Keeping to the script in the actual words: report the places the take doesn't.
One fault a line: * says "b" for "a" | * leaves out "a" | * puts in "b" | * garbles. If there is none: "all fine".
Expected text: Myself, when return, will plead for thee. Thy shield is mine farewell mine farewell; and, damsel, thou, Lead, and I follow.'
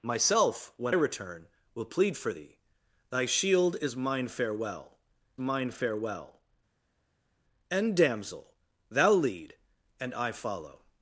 all fine